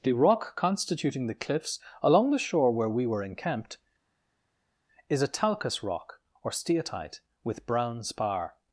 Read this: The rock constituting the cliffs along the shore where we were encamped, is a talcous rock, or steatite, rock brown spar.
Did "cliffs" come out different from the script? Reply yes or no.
no